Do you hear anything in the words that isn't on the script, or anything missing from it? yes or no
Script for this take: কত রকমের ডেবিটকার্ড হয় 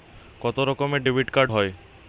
no